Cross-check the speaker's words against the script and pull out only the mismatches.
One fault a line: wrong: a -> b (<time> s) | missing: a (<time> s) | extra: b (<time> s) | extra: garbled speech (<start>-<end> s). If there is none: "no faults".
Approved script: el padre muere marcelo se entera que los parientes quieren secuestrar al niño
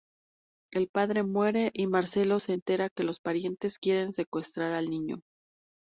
extra: y (1.7 s)